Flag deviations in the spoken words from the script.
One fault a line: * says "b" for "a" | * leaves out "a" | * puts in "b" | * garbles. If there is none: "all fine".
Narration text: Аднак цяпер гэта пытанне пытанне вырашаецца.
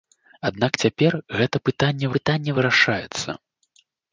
all fine